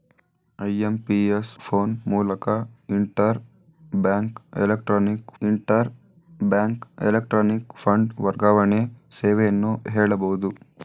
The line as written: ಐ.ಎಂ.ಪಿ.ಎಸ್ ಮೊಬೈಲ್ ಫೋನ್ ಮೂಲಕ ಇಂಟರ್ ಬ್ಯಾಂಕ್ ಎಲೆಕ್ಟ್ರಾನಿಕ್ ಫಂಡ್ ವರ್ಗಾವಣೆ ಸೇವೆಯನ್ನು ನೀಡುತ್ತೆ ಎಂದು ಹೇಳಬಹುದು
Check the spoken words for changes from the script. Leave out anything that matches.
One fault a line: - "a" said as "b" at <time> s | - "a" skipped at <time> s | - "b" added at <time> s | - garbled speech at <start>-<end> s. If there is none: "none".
- "ಮೊಬೈಲ್" skipped at 1.5 s
- "ಇಂಟರ್ ಬ್ಯಾಂಕ್ ಎಲೆಕ್ಟ್ರಾನಿಕ್" added at 5.4 s
- "ನೀಡುತ್ತೆ ಎಂದು" skipped at 9.7 s